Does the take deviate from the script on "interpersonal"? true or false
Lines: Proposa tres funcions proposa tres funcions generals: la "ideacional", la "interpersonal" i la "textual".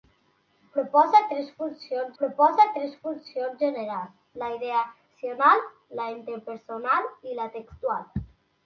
false